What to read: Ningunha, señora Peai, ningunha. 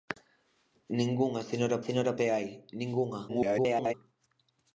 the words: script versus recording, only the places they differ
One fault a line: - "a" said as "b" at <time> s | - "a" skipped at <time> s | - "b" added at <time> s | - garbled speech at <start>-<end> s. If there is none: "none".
- "señora" added at 1.9 s
- garbled speech at 3.3-3.9 s